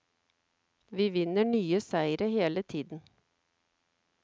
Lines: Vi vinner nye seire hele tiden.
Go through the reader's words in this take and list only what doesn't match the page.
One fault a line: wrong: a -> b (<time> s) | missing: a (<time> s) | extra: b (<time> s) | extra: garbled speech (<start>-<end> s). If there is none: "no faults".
no faults